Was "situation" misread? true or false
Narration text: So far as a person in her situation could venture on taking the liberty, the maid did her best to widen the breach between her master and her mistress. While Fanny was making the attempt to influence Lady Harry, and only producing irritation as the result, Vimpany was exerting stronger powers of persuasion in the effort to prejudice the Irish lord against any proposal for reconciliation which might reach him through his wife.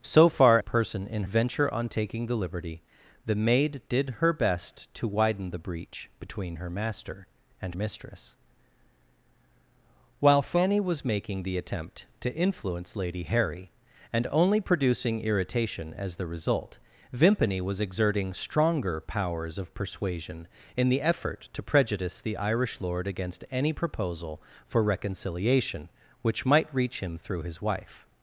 true